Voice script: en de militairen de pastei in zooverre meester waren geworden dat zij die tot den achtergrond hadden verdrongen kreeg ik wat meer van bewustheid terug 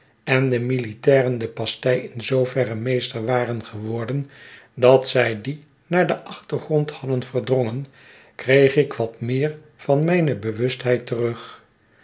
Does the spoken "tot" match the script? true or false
false